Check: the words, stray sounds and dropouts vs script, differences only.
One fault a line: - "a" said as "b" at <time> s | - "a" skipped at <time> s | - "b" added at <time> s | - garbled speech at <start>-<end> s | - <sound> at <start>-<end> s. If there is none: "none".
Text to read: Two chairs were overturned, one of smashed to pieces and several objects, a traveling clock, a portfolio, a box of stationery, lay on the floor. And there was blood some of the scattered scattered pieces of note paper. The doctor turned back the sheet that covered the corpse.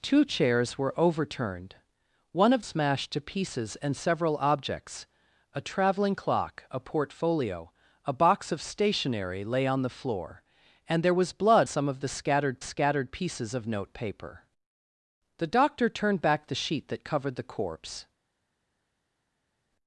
none